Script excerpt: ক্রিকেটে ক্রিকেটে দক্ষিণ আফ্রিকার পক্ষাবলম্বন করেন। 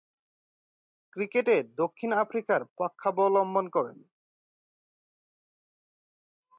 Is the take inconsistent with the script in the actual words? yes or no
yes